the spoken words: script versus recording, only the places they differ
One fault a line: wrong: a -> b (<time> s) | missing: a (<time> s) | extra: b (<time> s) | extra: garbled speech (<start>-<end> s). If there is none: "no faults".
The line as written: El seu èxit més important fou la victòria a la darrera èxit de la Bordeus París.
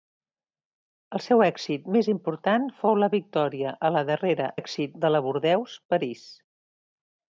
no faults